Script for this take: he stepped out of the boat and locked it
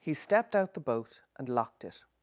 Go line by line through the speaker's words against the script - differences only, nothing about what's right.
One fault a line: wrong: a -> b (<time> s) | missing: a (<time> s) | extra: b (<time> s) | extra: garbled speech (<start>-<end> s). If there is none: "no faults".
missing: of (0.7 s)